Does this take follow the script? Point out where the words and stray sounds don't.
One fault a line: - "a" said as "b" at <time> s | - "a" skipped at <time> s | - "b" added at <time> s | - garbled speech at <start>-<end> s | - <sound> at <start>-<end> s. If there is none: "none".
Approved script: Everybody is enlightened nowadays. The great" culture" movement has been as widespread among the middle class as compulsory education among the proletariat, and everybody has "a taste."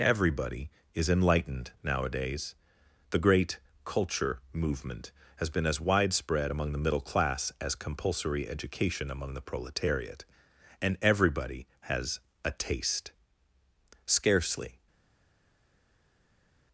- "Scarcely" added at 14.0 s